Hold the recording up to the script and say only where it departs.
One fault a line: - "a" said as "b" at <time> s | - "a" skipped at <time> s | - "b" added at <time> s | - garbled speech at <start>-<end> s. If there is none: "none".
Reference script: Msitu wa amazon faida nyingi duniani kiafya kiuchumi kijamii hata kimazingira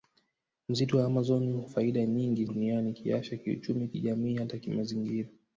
none